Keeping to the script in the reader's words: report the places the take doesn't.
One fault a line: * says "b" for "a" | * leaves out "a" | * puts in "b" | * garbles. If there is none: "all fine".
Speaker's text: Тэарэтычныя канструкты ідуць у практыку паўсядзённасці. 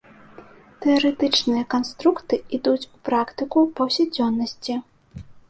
all fine